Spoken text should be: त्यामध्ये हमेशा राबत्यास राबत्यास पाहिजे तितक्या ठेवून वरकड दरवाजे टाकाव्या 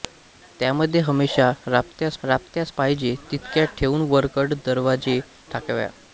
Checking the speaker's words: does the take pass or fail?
pass